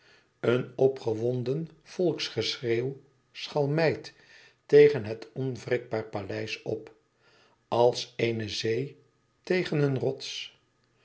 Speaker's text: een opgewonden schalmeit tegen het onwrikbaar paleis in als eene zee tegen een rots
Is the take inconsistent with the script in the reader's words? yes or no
yes